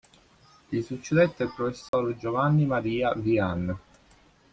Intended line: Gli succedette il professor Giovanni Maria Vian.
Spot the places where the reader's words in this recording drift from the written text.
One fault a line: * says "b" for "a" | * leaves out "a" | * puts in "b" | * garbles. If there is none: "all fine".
all fine